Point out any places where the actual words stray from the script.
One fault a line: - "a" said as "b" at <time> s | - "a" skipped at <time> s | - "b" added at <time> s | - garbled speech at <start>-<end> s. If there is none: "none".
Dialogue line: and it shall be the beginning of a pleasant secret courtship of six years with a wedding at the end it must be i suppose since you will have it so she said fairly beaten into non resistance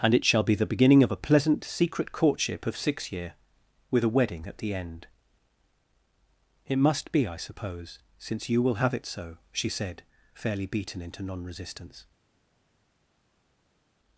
- "years" said as "year" at 3.1 s